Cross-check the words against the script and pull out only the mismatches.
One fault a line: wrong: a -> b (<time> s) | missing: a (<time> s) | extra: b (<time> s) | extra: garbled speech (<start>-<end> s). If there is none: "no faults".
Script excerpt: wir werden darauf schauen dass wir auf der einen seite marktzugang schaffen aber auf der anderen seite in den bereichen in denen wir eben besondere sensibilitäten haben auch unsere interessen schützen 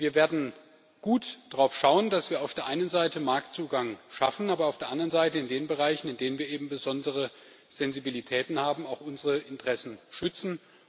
extra: gut (1.0 s)